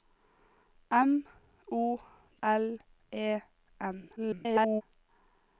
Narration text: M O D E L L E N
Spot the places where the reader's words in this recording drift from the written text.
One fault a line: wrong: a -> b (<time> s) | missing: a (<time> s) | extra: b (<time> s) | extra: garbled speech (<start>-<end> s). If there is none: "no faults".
missing: D E L (2.0 s)
extra: garbled speech (4.2-4.8 s)